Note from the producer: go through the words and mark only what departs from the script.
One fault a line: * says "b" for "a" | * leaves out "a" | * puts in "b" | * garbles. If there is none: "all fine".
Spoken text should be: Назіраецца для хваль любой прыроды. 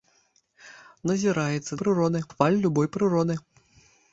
* says "прыроды" for "для"